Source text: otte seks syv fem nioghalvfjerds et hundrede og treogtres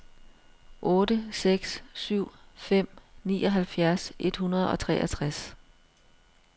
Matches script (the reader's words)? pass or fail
pass